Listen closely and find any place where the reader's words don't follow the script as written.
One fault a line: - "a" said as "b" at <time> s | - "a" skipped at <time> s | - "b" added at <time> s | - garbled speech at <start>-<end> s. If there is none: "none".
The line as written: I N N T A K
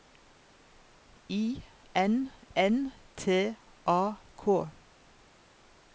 none